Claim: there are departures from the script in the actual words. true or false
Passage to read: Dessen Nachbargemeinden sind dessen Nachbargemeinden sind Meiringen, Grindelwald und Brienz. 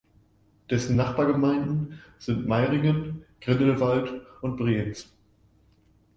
true